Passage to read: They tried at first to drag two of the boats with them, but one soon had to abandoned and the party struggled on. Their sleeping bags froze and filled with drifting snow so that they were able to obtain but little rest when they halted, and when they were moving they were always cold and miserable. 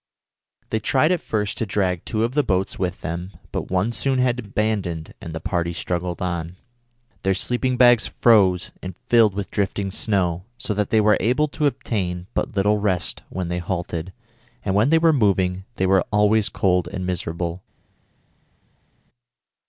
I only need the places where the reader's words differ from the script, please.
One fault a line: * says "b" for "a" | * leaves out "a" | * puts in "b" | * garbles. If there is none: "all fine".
all fine